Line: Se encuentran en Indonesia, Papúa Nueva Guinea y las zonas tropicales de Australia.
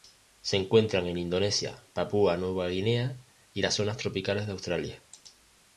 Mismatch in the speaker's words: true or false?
false